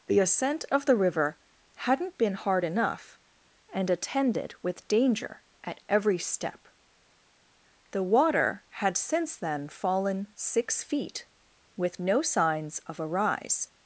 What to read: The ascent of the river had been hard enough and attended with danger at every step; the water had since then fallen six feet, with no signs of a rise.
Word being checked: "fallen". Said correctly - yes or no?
yes